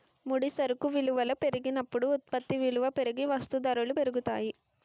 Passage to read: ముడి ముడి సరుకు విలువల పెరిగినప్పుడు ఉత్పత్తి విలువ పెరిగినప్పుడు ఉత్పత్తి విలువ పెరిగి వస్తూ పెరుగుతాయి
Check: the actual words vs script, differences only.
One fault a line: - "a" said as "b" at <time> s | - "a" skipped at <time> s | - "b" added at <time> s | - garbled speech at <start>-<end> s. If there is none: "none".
- "ముడి" skipped at 0.5 s
- "పెరిగినప్పుడు ఉత్పత్తి విలువ" skipped at 2.9 s
- "ధరలు" added at 3.7 s